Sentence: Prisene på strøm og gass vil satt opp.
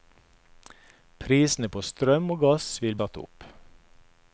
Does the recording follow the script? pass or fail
pass